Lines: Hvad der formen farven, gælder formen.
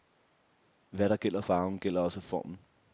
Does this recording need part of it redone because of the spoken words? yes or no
yes